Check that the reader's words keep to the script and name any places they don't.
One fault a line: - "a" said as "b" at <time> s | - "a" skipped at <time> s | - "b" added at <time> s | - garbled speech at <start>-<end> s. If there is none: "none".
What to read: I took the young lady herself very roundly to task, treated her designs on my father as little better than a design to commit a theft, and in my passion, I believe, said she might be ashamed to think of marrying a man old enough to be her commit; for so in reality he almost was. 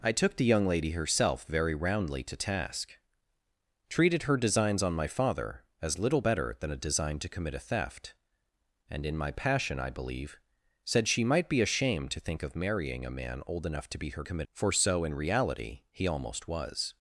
none